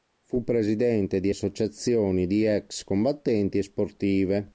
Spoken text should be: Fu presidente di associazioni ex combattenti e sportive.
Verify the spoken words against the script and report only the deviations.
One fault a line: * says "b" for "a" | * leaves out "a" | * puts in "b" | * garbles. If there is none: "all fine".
* puts in "di"